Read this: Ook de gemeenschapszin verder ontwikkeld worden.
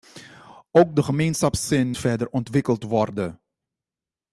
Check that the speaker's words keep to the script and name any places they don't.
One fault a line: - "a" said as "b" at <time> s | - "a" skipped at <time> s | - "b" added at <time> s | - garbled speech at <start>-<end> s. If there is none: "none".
none